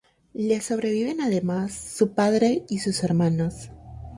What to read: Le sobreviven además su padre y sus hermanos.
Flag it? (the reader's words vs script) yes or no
no